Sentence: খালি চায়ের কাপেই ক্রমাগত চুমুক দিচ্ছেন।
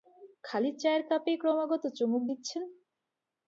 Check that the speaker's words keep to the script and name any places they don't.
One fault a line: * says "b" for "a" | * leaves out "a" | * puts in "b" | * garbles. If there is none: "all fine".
all fine